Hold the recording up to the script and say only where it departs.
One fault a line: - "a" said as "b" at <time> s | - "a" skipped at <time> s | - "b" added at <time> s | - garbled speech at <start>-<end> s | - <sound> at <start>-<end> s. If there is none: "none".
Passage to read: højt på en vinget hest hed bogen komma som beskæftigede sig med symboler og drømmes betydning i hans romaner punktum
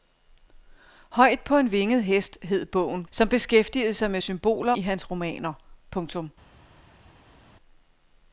- "komma" skipped at 3.0 s
- "og drømmes betydning" skipped at 4.7 s